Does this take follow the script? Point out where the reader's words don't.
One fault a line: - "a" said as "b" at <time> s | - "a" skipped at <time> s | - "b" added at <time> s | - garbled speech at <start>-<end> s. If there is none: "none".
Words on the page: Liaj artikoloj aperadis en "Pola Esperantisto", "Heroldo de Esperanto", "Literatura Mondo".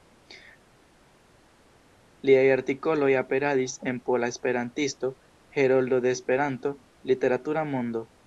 none